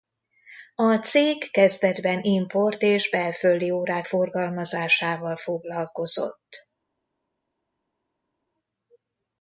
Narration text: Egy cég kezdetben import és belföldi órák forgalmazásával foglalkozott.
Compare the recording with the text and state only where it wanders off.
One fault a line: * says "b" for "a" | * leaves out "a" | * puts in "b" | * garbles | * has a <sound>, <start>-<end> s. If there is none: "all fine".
* says "A" for "Egy"